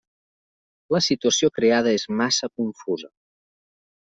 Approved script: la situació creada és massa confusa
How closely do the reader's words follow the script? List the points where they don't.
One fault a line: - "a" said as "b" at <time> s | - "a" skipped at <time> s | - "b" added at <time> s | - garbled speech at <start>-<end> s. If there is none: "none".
none